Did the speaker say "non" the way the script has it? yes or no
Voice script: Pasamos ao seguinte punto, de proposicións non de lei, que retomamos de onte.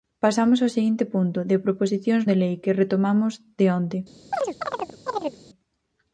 no